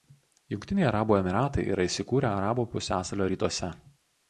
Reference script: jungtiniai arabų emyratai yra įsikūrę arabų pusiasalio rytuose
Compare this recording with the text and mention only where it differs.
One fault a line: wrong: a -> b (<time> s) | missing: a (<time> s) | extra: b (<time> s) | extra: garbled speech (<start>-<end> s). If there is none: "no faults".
no faults